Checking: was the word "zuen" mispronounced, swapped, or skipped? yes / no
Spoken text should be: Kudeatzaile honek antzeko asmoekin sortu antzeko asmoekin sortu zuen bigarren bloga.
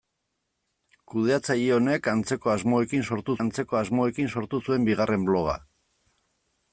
no